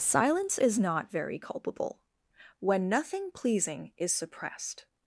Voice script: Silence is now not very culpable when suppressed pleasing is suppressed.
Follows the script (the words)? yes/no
no